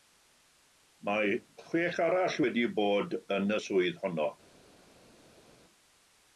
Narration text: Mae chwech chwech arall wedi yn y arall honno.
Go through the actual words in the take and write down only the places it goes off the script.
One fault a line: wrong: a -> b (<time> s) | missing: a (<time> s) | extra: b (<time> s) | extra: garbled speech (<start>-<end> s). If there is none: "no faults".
missing: chwech (2.0 s)
extra: bod (2.8 s)
wrong: arall -> swydd (3.7 s)